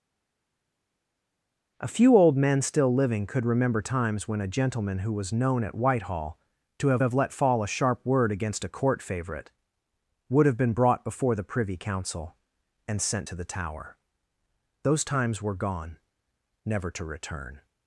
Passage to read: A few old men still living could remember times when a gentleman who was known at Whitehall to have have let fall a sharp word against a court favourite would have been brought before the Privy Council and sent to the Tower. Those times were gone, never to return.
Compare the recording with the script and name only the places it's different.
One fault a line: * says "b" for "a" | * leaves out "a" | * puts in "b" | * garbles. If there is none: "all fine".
all fine